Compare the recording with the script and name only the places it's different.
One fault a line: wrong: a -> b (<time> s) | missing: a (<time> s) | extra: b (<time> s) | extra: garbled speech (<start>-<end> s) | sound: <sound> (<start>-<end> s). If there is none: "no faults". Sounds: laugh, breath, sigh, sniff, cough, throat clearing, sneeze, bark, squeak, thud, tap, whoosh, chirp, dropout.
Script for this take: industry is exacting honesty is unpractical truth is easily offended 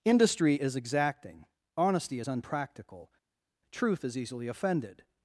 no faults